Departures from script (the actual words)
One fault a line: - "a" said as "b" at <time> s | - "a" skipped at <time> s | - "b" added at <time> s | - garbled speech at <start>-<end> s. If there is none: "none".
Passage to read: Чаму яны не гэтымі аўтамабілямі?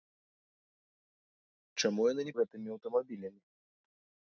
none